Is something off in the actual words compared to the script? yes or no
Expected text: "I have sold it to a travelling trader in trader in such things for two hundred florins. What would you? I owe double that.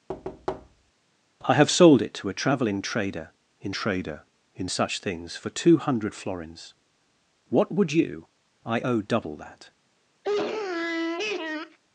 no